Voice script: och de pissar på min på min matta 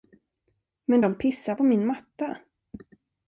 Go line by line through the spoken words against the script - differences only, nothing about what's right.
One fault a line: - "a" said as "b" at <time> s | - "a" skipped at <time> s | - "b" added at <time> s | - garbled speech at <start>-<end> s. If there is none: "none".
- "och" said as "men" at 0.8 s
- "på min" skipped at 1.9 s